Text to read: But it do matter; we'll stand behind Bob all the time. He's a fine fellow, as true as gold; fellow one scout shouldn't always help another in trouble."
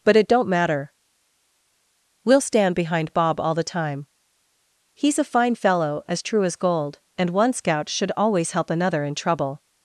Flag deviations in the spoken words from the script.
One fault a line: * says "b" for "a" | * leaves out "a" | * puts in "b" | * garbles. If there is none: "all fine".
* says "don't" for "do"
* says "and" for "fellow"
* says "should" for "shouldn't"